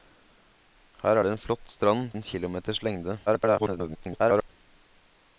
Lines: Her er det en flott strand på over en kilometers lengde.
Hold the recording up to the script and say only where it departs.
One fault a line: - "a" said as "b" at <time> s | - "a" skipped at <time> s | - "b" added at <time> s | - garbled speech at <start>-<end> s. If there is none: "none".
- "på over" skipped at 2.1 s
- garbled speech at 3.3-4.5 s